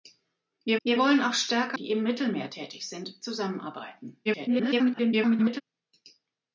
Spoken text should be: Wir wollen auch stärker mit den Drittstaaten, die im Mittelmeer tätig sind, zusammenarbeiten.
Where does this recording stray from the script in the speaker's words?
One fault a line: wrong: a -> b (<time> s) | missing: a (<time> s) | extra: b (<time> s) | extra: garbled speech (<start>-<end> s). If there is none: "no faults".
extra: wir (0.8 s)
missing: mit den Drittstaaten (1.8 s)
extra: garbled speech (4.3-5.6 s)